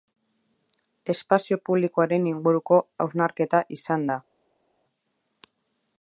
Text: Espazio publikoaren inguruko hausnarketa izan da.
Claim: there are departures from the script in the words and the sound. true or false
false